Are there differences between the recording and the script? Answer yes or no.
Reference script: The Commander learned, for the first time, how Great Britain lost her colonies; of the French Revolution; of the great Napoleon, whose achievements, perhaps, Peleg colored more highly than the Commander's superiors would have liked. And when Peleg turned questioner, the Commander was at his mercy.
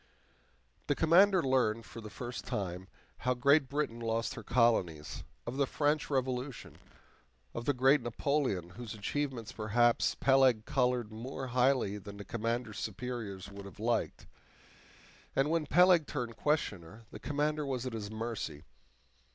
no